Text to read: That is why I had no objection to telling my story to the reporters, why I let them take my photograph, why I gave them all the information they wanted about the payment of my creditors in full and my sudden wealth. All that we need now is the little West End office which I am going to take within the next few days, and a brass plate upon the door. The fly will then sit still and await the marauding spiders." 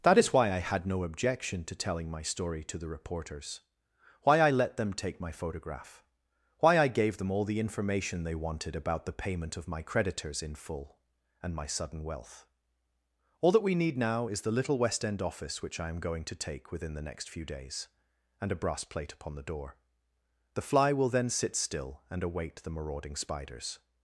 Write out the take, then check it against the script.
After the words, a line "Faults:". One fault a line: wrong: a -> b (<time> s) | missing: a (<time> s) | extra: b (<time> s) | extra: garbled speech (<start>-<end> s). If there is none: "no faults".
That is why I had no objection to telling my story to the reporters, why I let them take my photograph, why I gave them all the information they wanted about the payment of my creditors in full and my sudden wealth. All that we need now is the little West End office which I am going to take within the next few days, and a brass plate upon the door. The fly will then sit still and await the marauding spiders."
Faults:
no faults